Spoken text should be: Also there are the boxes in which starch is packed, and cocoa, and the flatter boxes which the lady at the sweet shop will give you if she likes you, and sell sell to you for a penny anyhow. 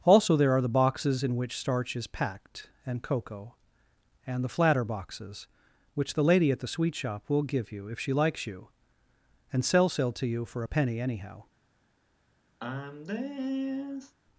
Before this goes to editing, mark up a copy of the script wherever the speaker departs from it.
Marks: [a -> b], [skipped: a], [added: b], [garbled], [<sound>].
Also there are the boxes in which starch is packed, and cocoa, and the flatter boxes which the lady at the sweet shop will give you if she likes you, and sell sell to you for a penny anyhow. [sigh]